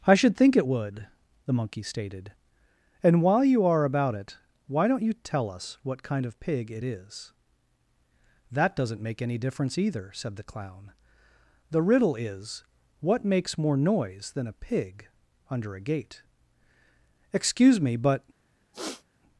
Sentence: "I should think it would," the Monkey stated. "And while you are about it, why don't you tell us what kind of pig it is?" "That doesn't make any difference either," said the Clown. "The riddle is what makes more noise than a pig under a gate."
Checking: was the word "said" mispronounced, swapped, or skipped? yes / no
no